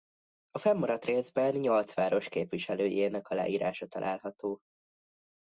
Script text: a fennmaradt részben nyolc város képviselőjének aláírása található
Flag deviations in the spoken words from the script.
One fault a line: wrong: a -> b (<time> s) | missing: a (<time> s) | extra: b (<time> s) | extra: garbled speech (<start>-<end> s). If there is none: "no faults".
no faults